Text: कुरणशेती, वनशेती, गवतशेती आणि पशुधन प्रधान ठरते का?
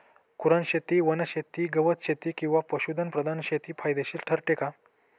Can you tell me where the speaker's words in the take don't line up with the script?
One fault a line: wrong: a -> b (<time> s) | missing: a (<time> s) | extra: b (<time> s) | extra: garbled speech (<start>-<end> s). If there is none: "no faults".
wrong: आणि -> किंवा (2.4 s)
extra: शेती फायदेशीर (3.4 s)